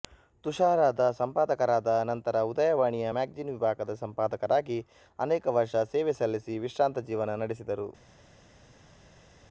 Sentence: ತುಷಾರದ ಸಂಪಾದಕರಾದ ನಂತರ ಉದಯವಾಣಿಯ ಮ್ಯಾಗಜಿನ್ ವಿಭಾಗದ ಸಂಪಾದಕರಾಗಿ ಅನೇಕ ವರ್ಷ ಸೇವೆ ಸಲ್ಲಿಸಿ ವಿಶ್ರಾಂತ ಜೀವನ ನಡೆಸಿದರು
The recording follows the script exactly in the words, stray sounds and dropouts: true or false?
true